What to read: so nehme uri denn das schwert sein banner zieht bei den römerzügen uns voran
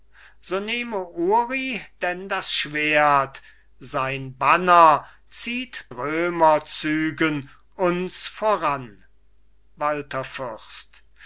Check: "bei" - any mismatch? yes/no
yes